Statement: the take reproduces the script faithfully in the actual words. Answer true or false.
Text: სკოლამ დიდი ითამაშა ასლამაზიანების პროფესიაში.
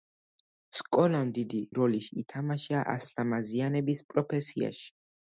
false